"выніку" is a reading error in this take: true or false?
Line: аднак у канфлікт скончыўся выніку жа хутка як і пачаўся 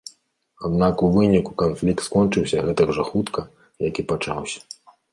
true